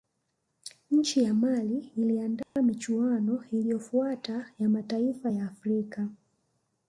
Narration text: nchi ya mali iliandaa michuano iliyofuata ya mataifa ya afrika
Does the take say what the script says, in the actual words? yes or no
yes